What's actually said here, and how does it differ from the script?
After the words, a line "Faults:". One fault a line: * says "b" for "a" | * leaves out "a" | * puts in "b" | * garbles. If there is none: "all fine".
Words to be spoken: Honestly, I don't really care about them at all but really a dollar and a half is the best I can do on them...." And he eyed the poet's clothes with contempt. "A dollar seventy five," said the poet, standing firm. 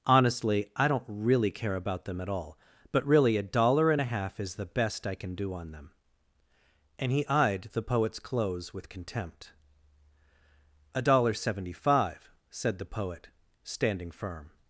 Honestly, I don't really care about them at all but really a dollar and a half is the best I can do on them...." And he eyed the poet's clothes with contempt. "A dollar seventy five," said the poet, standing firm.
Faults:
all fine